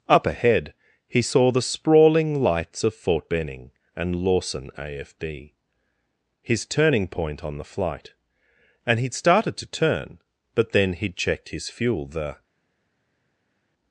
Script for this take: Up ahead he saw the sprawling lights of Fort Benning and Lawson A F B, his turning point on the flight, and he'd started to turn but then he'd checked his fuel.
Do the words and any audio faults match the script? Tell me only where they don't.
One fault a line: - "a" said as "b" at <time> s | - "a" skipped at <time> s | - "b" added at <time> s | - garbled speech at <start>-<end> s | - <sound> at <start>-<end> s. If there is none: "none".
- "The" added at 12.1 s